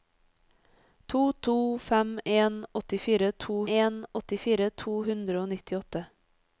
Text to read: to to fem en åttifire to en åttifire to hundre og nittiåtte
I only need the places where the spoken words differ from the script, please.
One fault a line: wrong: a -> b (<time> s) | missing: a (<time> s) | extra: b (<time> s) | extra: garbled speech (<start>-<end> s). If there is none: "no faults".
no faults